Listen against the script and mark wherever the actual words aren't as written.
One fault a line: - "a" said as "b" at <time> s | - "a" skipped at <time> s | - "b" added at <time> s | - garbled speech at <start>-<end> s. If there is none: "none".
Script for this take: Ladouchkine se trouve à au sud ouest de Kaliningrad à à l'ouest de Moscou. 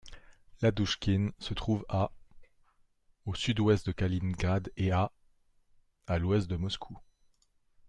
- "et" added at 4.8 s